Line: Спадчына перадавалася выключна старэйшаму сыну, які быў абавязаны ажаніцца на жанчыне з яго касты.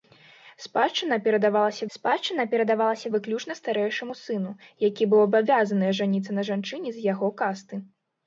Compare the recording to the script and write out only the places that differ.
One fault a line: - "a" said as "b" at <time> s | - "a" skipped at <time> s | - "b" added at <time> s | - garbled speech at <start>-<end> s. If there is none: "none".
- "спадчына перадавалася" added at 1.9 s